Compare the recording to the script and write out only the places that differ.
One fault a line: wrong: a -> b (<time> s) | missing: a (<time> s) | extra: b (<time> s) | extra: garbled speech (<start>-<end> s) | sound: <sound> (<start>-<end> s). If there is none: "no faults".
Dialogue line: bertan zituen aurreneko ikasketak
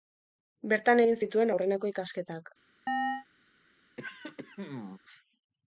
extra: egin (1.0 s)
sound: chirp (2.9-3.3 s)
sound: throat clearing (4.0-5.0 s)